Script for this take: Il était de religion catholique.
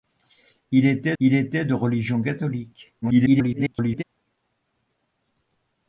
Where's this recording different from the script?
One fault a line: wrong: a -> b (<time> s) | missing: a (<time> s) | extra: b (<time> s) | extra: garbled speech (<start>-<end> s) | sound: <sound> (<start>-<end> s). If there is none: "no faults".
extra: il était (1.2 s)
extra: garbled speech (3.0-4.0 s)